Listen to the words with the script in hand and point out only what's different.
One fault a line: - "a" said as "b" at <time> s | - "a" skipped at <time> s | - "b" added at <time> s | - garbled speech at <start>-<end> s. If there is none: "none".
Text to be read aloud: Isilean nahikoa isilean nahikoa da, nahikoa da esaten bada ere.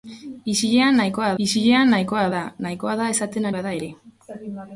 none